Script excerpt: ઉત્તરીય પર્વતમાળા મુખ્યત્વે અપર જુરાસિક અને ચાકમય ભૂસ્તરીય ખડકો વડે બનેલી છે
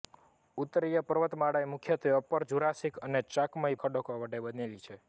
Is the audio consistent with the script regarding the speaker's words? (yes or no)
no